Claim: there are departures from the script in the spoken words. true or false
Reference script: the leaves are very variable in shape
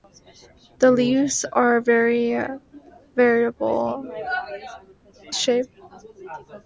true